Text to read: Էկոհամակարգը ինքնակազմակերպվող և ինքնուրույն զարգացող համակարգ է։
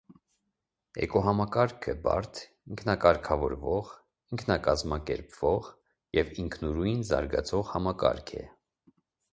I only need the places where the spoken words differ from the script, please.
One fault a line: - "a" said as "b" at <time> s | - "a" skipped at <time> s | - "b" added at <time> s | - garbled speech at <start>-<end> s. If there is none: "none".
- "բարդ ինքնակարգավորվող" added at 2.1 s